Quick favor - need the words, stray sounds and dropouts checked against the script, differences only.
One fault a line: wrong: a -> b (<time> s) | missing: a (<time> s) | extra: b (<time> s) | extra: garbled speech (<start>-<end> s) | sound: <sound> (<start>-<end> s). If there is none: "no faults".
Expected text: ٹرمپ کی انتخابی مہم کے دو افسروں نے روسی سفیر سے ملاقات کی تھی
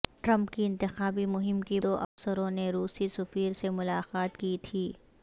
sound: dropout (2.0-2.2 s)